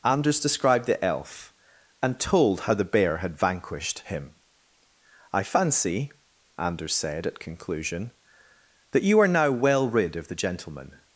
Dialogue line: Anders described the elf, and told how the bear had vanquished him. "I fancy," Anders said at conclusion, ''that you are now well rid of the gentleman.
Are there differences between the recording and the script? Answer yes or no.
no